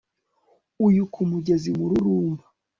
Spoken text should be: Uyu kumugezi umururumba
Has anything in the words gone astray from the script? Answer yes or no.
no